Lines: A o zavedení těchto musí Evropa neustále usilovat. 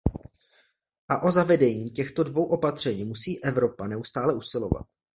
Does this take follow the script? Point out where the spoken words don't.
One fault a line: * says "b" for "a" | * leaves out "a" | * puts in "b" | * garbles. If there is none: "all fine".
* puts in "dvou opatření"